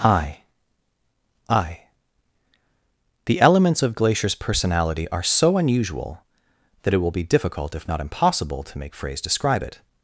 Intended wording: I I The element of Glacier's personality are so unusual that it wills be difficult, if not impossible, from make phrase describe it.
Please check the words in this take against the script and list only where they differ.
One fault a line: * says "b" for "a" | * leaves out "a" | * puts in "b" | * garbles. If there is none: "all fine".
* says "elements" for "element"
* says "will" for "wills"
* says "to" for "from"